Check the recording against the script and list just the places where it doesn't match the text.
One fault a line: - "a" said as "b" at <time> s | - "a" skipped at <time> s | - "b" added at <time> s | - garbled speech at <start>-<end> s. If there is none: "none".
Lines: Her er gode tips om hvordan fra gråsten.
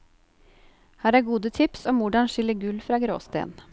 - "skille gull" added at 2.3 s